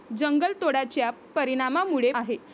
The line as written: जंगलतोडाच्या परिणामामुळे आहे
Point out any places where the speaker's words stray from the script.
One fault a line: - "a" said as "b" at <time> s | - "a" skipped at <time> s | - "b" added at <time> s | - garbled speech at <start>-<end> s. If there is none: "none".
none